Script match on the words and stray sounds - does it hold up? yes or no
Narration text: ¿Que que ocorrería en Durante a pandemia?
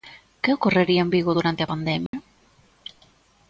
no